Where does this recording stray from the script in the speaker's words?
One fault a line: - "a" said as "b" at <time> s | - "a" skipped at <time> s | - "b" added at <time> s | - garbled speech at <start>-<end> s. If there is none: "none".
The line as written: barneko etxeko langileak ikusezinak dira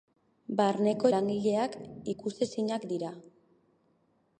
- "etxeko" skipped at 1.1 s